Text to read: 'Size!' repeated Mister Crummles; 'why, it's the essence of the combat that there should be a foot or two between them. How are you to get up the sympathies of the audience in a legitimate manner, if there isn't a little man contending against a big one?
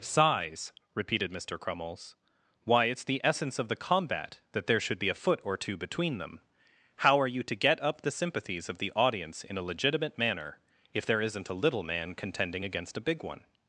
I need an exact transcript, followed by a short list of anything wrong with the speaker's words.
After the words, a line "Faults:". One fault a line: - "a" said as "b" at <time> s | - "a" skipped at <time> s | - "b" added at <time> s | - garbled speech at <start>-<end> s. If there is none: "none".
'Size!' repeated Mister Crummles; 'why, it's the essence of the combat that there should be a foot or two between them. How are you to get up the sympathies of the audience in a legitimate manner, if there isn't a little man contending against a big one?
Faults:
none